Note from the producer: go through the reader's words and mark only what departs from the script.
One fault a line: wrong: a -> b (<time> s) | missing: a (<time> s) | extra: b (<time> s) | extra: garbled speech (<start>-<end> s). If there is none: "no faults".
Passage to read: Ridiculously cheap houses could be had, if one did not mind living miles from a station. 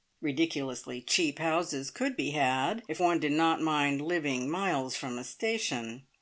no faults